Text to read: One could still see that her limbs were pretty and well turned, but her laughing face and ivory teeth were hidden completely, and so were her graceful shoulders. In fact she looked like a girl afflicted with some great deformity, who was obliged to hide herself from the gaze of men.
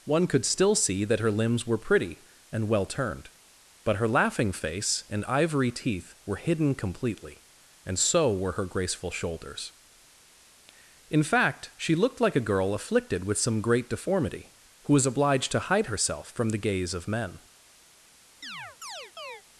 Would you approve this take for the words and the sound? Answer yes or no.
no